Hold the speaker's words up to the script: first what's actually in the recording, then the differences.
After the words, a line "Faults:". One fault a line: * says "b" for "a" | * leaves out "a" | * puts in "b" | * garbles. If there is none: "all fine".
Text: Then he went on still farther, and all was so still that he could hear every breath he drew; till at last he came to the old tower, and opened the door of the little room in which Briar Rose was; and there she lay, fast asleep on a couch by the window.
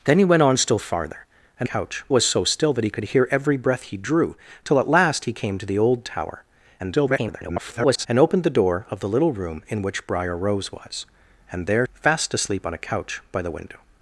Then he went on still farther, and couch was so still that he could hear every breath he drew; till at last he came to the old tower, [garbled] and opened the door of the little room in which Briar Rose was; and there fast asleep on a couch by the window.
Faults:
* says "couch" for "all"
* garbles
* leaves out "she lay"